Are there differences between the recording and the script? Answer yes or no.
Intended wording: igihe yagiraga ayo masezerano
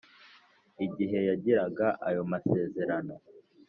no